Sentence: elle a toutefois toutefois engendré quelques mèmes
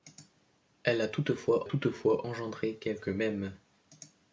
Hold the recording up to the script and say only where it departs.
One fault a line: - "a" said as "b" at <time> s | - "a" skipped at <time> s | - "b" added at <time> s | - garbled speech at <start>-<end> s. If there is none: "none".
none